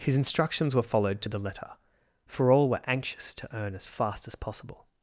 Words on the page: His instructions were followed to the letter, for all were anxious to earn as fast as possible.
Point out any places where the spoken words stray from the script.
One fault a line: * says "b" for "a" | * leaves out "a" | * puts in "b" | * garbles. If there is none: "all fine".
all fine